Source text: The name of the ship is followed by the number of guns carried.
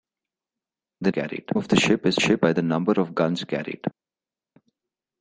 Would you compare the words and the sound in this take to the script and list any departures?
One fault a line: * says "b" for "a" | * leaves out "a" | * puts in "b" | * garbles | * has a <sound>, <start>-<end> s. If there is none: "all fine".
* says "carried" for "name"
* says "ship" for "followed"